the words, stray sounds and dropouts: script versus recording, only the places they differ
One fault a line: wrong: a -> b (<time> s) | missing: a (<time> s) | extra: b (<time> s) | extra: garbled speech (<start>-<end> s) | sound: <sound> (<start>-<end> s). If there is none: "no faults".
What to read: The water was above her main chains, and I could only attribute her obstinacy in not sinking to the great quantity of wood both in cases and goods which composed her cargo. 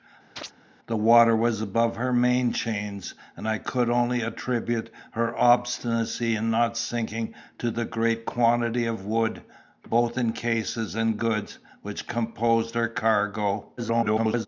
sound: chirp (0.4-0.5 s)
extra: garbled speech (13.8-14.5 s)